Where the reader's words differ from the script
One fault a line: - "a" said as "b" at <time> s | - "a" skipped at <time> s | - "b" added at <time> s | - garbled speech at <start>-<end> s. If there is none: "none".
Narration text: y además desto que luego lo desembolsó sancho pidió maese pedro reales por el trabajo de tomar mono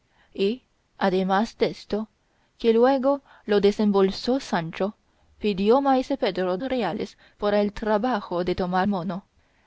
none